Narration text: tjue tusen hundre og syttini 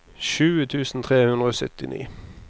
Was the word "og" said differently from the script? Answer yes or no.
no